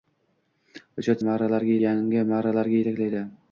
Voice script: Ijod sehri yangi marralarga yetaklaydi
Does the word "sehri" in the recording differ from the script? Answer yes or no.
yes